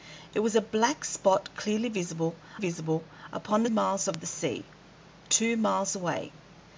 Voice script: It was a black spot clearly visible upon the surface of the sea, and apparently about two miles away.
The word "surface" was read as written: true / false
false